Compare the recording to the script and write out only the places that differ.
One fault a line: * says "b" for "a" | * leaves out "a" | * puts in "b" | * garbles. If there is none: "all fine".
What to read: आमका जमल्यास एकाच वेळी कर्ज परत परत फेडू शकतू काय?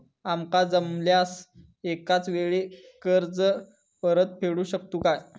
* leaves out "परत"